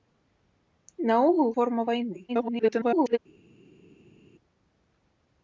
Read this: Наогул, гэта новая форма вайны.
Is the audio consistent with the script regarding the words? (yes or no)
no